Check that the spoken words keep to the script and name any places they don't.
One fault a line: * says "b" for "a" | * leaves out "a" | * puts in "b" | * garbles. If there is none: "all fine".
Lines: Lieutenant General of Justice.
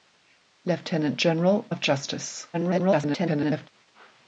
* garbles